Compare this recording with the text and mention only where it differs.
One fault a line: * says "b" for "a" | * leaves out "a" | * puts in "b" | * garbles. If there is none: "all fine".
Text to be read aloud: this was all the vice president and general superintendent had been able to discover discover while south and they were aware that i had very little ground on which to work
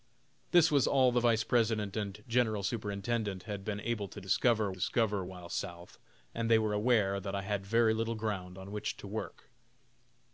all fine